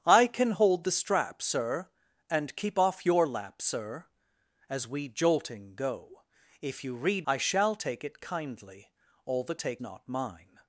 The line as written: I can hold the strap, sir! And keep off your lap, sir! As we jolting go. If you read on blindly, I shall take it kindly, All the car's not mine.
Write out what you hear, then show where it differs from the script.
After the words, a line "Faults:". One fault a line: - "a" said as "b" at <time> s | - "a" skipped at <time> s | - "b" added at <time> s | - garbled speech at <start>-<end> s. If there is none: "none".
I can hold the strap, sir! And keep off your lap, sir! As we jolting go. If you read I shall take it kindly, All the take not mine.
Faults:
- "on blindly" skipped at 7.3 s
- "car's" said as "take" at 9.5 s